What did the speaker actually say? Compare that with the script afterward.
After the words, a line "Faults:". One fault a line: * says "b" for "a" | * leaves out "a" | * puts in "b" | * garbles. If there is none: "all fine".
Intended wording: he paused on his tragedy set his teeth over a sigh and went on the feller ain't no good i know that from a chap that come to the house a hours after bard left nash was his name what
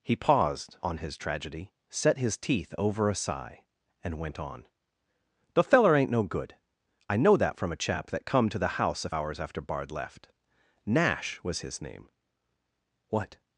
he paused on his tragedy set his teeth over a sigh and went on the feller ain't no good i know that from a chap that come to the house a hours after bard left nash was his name what
Faults:
all fine